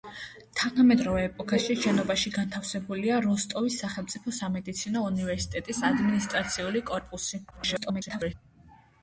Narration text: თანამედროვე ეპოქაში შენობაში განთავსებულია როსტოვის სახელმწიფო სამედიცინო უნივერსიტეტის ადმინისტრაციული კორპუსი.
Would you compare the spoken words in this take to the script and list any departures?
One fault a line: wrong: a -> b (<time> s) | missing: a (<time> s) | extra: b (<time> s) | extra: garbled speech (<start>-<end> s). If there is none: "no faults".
extra: garbled speech (7.5-8.3 s)